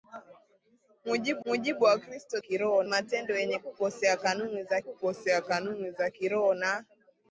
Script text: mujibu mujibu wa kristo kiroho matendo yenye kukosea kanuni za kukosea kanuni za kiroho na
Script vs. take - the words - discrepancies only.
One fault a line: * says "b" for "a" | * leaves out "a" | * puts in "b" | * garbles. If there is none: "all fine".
all fine